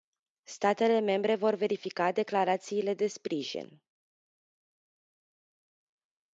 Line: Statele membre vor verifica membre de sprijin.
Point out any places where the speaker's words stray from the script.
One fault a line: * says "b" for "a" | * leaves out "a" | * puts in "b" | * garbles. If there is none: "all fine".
* says "declarațiile" for "membre"